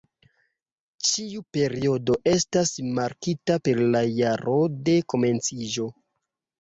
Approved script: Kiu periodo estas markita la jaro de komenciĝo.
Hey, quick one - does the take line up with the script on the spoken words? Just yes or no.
no